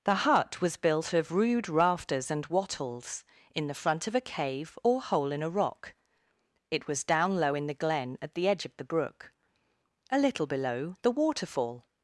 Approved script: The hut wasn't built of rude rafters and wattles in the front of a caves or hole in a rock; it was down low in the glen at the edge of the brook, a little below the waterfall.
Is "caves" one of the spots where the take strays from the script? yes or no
yes